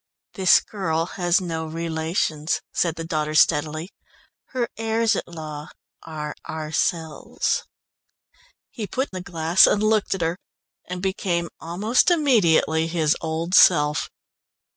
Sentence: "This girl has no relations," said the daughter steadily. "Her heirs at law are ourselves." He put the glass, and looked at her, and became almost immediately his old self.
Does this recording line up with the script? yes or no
yes